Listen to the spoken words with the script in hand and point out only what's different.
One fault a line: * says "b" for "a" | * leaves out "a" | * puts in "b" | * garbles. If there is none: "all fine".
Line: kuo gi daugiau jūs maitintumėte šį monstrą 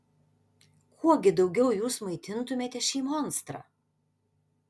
all fine